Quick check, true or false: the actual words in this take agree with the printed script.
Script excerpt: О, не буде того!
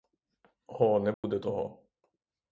true